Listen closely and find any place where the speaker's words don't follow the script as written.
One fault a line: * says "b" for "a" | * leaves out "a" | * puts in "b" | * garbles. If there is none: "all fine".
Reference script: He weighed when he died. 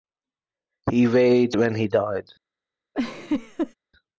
all fine